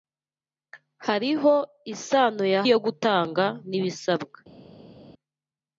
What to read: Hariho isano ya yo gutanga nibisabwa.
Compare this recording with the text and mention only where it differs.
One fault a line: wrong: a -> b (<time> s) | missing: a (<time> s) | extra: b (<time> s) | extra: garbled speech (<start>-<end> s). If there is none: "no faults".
no faults